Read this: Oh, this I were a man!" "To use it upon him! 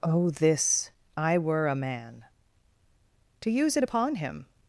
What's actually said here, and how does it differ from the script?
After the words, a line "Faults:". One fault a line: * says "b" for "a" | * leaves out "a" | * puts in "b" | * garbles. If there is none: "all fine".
Oh, this I were a man!" "To use it upon him!
Faults:
all fine